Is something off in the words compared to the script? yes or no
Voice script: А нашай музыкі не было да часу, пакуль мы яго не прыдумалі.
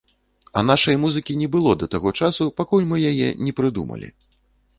yes